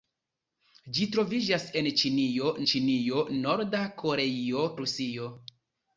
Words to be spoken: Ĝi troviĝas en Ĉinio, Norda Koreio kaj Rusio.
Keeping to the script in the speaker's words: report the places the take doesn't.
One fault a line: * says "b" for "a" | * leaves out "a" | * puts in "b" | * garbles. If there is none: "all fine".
* puts in "Ĉinio"
* leaves out "kaj"